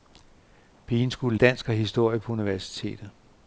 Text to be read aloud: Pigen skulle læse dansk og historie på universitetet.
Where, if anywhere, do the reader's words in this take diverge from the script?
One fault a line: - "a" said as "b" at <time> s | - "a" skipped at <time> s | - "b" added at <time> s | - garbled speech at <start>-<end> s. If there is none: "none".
- "læse" skipped at 1.4 s